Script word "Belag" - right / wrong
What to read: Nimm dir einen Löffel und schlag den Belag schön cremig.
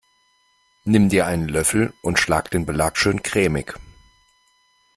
right